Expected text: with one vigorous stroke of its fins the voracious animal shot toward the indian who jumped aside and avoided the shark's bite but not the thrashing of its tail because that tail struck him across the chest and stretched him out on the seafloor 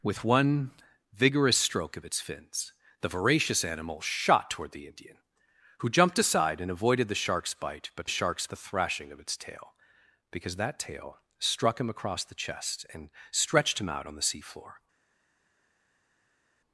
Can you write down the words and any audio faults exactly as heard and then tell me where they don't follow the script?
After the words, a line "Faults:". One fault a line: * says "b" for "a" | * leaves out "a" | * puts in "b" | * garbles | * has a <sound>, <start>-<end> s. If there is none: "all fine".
with one vigorous stroke of its fins the voracious animal shot toward the indian who jumped aside and avoided the shark's bite but shark's the thrashing of its tail because that tail struck him across the chest and stretched him out on the seafloor
Faults:
* says "shark's" for "not"